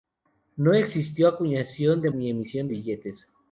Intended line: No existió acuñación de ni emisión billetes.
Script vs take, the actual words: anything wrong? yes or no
no